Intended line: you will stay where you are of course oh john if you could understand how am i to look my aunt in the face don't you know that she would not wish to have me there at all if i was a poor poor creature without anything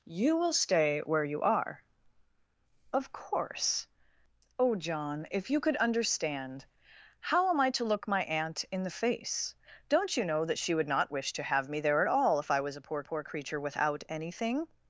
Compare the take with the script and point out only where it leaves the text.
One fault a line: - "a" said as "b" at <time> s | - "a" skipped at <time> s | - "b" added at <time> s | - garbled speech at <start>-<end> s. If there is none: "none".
none